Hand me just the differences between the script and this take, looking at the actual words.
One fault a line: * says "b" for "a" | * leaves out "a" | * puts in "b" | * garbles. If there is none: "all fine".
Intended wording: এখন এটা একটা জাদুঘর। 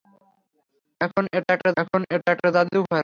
* puts in "এখন এটা একটা"